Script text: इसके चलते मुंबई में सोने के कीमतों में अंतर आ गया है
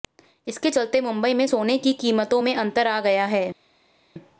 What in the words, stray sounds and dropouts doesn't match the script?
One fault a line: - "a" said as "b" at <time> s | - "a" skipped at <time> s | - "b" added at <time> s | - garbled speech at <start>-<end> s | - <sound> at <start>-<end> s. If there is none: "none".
- "के" said as "की" at 1.8 s